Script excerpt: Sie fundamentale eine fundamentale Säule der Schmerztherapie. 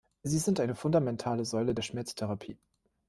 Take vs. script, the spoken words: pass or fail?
fail